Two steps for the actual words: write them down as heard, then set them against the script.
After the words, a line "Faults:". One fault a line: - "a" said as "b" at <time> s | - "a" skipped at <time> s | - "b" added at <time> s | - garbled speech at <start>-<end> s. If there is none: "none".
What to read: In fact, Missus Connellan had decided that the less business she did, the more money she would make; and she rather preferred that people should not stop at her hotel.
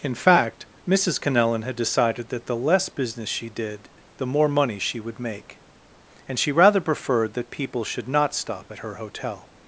In fact, Missus Connellan had decided that the less business she did, the more money she would make; and she rather preferred that people should not stop at her hotel.
Faults:
none